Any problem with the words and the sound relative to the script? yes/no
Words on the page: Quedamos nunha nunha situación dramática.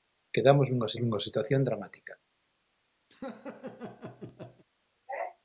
yes